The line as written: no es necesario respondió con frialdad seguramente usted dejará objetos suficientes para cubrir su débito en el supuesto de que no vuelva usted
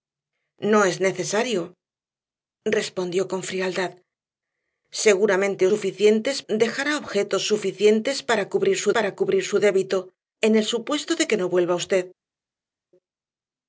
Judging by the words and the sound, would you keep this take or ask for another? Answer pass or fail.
fail